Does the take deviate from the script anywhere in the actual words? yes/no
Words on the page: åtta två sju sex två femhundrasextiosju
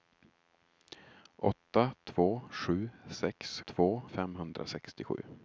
no